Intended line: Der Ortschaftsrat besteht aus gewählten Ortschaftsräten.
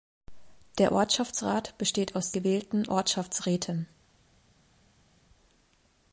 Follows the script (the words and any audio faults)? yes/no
yes